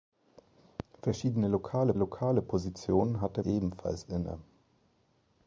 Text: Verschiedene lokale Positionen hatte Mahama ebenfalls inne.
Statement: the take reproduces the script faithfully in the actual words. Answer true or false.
false